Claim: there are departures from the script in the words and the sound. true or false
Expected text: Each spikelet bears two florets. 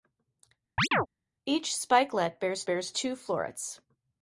true